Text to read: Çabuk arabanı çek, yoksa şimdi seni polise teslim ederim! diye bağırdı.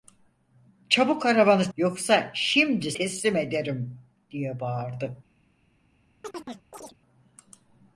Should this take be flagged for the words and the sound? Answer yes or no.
yes